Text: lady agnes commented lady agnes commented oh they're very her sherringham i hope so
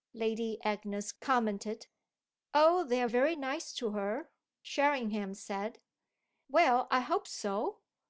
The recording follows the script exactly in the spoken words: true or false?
false